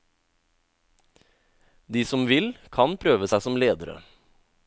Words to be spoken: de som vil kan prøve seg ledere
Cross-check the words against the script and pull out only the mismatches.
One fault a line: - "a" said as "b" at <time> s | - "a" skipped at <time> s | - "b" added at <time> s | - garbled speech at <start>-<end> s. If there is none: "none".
- "som" added at 3.4 s